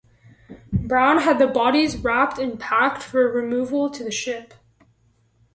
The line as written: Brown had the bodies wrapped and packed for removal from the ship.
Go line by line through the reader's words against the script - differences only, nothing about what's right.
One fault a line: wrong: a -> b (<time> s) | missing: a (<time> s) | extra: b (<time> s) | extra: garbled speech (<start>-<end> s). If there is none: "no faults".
wrong: from -> to (3.9 s)